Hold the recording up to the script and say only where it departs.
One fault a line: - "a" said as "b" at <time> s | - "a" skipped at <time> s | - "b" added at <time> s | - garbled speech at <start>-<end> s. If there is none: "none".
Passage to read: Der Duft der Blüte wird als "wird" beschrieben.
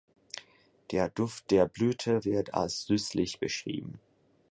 - "wird" said as "süßlich" at 2.8 s